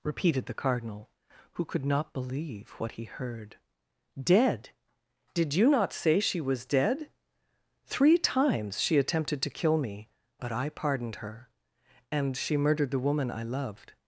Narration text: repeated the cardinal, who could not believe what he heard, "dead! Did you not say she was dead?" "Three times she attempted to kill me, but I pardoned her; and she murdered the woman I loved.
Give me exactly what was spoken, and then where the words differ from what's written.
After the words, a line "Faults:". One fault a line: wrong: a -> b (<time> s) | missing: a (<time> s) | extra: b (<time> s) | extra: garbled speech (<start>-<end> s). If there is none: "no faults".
repeated the cardinal, who could not believe what he heard, "dead! Did you not say she was dead?" "Three times she attempted to kill me, but I pardoned her; and she murdered the woman I loved.
Faults:
no faults